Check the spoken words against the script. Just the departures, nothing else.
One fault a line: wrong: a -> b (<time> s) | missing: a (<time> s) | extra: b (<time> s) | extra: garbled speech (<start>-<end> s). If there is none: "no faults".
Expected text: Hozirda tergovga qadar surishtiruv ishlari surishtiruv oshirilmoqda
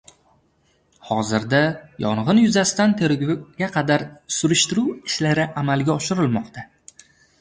extra: yong‘in yuzasidan (2.0 s)
wrong: surishtiruv -> amalga (5.6 s)